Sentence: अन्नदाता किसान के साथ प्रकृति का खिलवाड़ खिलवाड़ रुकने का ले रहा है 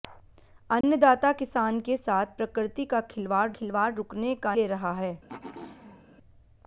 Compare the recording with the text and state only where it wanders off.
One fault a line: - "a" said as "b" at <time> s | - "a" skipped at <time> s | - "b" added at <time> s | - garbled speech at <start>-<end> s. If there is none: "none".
none